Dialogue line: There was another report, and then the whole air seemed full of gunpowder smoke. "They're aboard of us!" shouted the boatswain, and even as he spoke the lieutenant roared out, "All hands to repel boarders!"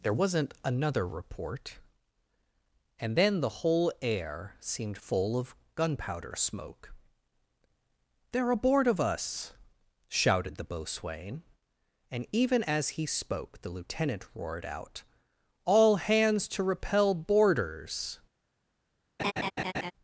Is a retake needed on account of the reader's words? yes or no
yes